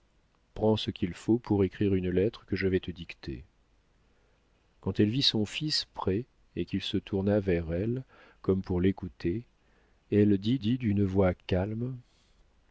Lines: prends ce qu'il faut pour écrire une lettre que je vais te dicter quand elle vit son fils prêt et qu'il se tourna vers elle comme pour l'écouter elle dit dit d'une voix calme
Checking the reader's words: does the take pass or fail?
pass